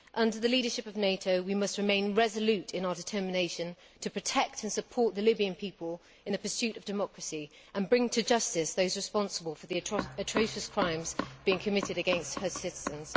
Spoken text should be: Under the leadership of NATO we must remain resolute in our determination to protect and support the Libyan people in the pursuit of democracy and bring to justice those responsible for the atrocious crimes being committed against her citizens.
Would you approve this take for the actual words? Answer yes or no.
yes